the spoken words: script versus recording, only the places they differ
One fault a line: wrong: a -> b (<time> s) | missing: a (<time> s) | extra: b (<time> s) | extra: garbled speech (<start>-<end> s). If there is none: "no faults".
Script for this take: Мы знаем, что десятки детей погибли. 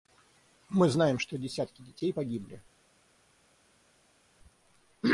no faults